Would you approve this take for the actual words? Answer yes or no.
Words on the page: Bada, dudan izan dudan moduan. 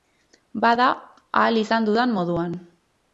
no